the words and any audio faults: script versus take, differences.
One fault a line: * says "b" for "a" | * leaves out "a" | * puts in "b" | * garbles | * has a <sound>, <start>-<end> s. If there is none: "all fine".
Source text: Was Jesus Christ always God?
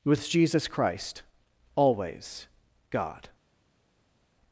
* says "With" for "Was"